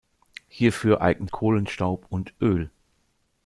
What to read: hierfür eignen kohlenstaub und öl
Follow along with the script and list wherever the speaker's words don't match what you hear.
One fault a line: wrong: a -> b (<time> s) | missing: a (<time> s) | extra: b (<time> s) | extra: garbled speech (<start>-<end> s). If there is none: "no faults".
no faults